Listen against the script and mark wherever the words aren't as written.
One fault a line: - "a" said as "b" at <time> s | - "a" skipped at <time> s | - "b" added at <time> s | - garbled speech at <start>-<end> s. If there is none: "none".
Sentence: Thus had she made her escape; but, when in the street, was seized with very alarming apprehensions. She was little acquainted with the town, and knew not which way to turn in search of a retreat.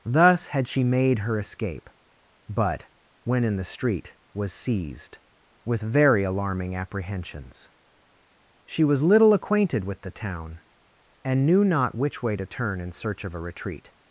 none